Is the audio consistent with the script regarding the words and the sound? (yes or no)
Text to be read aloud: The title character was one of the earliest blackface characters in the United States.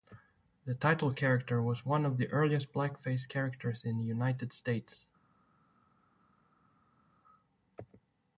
yes